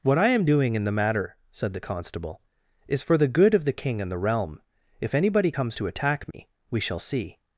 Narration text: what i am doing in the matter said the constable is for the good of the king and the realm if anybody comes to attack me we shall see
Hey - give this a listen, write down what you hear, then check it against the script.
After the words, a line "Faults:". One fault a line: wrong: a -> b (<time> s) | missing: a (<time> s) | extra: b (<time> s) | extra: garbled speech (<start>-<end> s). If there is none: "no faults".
what i am doing in the matter said the constable is for the good of the king and the realm if anybody comes to attack me we shall see
Faults:
no faults